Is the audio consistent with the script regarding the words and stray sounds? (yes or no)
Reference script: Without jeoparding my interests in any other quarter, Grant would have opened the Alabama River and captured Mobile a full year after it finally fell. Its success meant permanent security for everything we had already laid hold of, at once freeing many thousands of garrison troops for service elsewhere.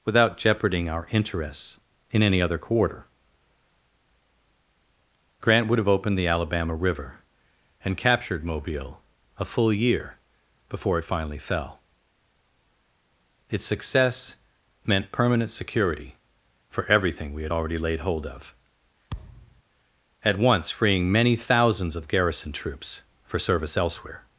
no